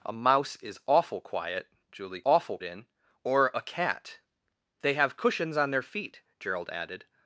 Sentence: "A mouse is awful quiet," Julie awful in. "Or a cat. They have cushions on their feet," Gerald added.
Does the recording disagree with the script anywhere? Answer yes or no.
no